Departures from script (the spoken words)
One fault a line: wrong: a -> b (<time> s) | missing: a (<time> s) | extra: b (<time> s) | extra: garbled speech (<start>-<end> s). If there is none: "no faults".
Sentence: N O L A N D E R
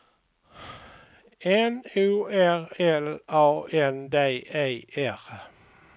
extra: R (2.2 s)